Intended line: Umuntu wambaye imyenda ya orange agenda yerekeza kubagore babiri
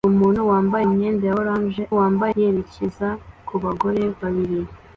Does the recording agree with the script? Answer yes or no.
no